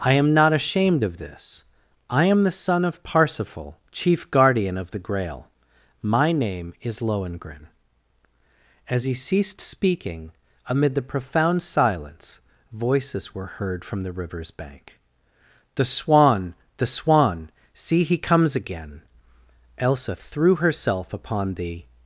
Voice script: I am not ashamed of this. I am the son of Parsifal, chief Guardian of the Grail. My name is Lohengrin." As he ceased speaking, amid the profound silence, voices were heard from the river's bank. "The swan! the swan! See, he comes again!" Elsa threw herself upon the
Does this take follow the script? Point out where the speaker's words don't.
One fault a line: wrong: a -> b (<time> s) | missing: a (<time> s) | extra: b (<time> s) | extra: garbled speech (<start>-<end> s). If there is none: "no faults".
no faults